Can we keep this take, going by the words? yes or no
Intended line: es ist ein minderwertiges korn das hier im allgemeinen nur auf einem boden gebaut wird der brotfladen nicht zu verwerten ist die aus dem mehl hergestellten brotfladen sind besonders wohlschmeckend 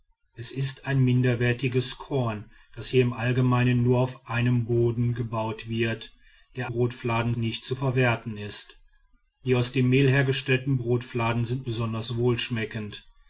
yes